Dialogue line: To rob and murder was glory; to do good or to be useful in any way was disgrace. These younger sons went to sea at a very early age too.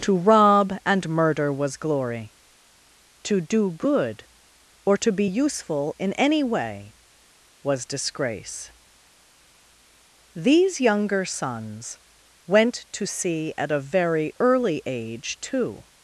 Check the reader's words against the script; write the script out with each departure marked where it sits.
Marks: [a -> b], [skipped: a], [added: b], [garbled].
To rob and murder was glory; to do good or to be useful in any way was disgrace. These younger sons went to sea at a very early age too.